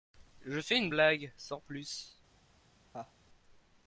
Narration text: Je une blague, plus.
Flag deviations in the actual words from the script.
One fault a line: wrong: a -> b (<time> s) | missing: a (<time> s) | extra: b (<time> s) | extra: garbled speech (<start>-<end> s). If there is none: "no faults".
extra: fais (0.6 s)
extra: sans (1.4 s)